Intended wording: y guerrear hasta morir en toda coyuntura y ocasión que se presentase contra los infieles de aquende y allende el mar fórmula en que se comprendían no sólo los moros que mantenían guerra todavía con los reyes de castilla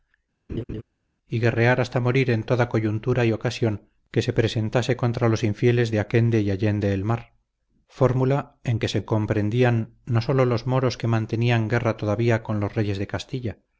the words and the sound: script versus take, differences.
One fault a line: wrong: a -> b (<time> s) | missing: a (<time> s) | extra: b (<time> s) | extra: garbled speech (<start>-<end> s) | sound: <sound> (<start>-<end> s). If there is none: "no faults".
sound: laugh (0.5-0.8 s)